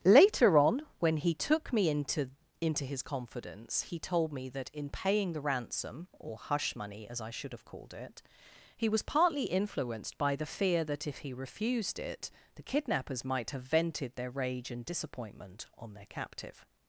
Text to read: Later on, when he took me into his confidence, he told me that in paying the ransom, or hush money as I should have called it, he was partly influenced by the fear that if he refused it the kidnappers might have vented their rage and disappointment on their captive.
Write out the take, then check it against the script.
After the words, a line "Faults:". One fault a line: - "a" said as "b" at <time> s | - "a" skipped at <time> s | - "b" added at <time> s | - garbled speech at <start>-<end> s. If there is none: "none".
Later on, when he took me into into his confidence, he told me that in paying the ransom, or hush money as I should have called it, he was partly influenced by the fear that if he refused it the kidnappers might have vented their rage and disappointment on their captive.
Faults:
- "into" added at 2.6 s